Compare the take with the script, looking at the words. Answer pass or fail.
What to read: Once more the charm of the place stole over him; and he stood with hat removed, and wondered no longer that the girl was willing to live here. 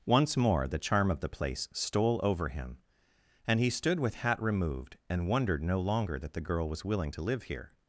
pass